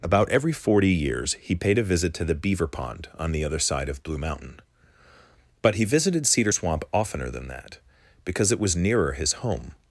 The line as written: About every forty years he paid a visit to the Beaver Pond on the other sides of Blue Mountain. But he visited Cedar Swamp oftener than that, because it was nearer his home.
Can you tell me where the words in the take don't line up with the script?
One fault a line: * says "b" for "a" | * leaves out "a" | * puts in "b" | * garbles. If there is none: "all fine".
* says "side" for "sides"